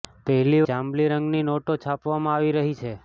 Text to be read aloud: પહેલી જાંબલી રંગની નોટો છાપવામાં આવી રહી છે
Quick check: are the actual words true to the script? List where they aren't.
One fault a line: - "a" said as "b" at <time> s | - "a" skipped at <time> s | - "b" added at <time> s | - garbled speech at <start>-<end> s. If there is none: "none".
none